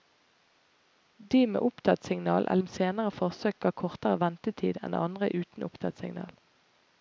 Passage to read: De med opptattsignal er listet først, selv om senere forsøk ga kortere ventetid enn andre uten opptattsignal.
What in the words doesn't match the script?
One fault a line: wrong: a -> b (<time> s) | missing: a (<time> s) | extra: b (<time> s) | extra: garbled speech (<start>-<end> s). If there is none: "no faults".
missing: listet først selv (2.5 s)